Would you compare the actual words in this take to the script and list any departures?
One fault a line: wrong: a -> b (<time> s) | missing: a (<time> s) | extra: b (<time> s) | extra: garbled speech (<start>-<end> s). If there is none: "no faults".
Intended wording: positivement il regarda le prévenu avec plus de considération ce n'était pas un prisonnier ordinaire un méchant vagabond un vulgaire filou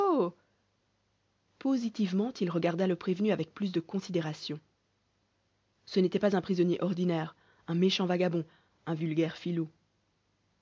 no faults